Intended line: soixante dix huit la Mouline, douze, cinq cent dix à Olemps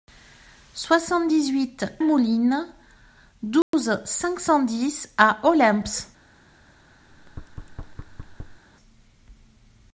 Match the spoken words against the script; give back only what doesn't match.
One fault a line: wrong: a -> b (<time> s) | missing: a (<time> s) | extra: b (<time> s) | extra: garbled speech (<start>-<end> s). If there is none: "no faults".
missing: la (1.8 s)